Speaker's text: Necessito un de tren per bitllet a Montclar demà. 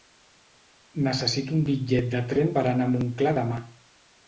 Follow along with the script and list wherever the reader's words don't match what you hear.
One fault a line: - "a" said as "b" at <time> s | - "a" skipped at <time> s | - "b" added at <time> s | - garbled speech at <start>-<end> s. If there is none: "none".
- "bitllet" added at 1.7 s
- "bitllet" said as "anar" at 2.8 s